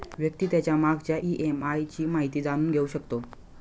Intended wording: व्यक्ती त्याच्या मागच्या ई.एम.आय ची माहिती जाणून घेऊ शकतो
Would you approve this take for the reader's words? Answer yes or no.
yes